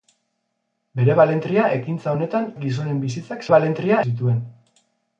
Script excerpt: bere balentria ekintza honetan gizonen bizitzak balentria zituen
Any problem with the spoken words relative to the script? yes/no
no